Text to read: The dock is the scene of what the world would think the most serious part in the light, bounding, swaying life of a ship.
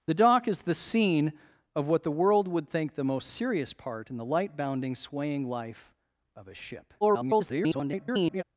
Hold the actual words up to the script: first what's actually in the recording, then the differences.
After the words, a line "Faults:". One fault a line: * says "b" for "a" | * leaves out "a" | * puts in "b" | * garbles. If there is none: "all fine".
The dock is the scene of what the world would think the most serious part in the light, bounding, swaying life of a ship. [garbled]
Faults:
* garbles